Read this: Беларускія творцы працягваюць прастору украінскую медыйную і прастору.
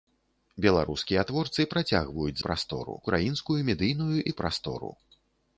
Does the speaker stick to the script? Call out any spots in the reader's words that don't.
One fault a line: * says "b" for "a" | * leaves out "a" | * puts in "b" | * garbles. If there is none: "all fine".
all fine